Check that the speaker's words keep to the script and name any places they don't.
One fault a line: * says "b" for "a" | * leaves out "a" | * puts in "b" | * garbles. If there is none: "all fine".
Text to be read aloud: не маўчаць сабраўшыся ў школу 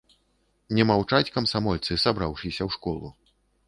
* puts in "камсамольцы"